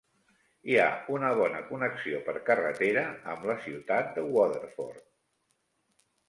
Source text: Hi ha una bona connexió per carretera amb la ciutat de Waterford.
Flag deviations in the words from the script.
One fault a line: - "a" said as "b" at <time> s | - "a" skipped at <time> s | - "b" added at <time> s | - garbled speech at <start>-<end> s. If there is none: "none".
none